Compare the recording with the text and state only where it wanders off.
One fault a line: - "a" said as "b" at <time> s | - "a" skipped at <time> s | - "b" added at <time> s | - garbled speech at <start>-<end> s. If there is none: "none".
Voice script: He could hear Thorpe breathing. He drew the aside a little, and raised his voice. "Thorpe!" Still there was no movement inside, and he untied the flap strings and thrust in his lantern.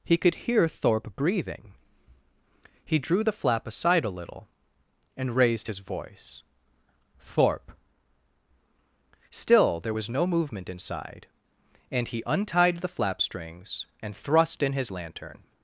- "flap" added at 3.3 s